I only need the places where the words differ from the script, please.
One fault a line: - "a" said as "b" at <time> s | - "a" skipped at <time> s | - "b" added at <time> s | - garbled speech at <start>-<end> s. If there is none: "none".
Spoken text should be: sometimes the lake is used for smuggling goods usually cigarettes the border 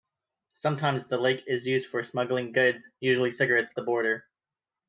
none